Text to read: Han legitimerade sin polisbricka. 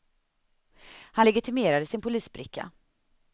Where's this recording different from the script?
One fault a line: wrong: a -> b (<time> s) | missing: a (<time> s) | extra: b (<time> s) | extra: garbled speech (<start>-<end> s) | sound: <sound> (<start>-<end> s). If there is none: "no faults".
no faults